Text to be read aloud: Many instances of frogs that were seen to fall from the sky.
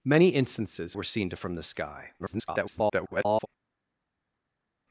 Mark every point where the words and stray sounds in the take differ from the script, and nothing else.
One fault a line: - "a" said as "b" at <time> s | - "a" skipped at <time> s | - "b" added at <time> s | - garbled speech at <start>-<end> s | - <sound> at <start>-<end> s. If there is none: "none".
- "of frogs that" skipped at 0.9 s
- "fall" skipped at 1.4 s
- garbled speech at 2.2-3.5 s